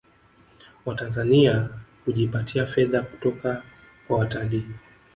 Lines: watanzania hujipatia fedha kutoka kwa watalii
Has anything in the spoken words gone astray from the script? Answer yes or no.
no